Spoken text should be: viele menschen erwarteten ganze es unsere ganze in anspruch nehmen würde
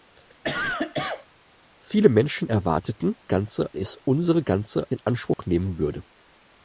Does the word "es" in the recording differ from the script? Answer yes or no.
no